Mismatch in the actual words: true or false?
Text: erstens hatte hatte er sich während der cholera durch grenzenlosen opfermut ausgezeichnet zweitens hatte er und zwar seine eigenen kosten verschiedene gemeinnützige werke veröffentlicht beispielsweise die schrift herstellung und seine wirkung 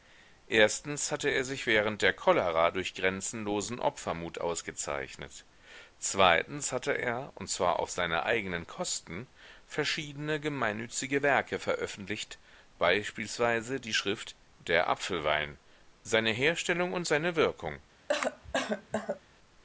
true